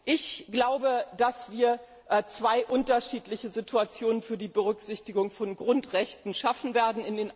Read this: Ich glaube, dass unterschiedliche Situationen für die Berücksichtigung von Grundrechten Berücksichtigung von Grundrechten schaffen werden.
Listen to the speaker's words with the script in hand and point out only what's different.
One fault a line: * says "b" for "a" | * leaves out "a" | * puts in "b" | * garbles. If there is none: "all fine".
* puts in "wir zwei"
* leaves out "Berücksichtigung von Grundrechten"